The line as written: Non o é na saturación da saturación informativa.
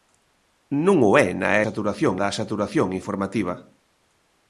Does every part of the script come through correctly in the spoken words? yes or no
yes